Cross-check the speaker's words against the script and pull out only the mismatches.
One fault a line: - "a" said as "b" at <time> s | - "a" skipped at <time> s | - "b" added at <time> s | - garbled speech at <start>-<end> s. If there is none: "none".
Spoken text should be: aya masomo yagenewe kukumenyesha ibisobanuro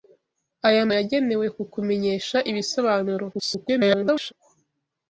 - "masomo" skipped at 0.8 s
- garbled speech at 3.3-4.3 s